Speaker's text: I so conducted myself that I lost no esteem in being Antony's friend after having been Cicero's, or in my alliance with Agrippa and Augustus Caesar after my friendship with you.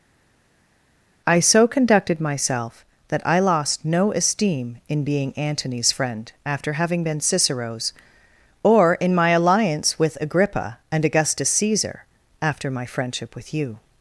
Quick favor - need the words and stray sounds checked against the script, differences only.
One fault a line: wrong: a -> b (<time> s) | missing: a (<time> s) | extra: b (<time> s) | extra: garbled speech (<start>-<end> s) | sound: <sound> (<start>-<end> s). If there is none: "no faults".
no faults